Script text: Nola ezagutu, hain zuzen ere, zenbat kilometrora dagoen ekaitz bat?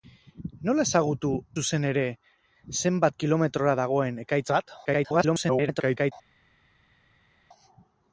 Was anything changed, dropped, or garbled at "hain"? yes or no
yes